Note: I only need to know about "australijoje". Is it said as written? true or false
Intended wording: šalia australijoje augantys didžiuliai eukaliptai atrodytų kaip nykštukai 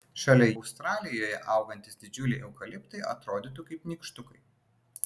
true